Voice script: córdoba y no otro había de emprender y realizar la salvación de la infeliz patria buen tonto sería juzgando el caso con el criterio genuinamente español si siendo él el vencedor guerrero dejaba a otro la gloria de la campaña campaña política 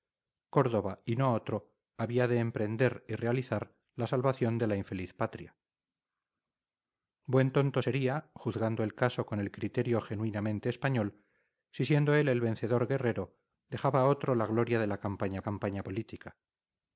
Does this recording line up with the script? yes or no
yes